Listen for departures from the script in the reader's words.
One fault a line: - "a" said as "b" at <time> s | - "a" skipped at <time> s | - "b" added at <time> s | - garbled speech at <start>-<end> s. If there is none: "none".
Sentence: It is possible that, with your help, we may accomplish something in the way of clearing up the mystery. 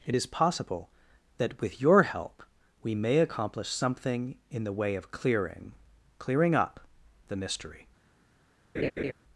- "clearing" added at 6.2 s